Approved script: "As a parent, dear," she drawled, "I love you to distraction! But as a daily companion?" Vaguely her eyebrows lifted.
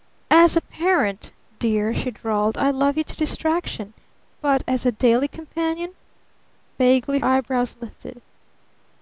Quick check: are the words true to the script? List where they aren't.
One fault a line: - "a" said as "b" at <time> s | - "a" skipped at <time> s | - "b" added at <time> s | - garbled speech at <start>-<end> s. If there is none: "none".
- "her" skipped at 7.2 s